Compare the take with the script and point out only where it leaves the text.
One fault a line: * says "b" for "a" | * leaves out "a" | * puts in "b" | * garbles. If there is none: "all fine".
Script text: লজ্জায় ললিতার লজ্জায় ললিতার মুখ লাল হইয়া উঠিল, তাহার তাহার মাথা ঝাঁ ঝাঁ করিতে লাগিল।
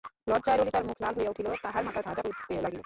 * leaves out "লজ্জায় ললিতার"
* leaves out "তাহার"